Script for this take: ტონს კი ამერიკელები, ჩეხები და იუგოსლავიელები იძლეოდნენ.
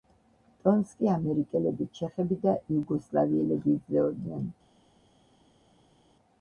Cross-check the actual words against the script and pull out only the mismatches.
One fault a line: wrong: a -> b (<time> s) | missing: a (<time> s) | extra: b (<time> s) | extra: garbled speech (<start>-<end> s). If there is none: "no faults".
no faults